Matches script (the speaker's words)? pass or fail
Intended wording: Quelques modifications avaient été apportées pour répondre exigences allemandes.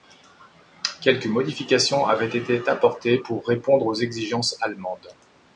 fail